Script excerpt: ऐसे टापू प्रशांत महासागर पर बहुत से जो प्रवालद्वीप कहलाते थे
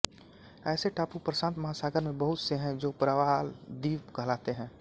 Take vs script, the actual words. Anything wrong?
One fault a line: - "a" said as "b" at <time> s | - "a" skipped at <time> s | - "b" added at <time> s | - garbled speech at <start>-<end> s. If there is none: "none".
- "पर" said as "में" at 2.0 s
- "हैं" added at 2.6 s
- "थे" said as "हैं" at 4.5 s